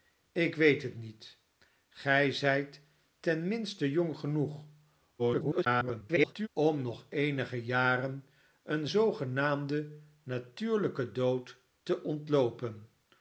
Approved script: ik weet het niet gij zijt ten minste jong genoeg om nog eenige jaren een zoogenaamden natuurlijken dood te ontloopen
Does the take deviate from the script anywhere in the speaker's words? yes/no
yes